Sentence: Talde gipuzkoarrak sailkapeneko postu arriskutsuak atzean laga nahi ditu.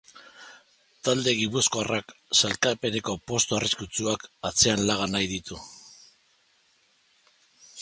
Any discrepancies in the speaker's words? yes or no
no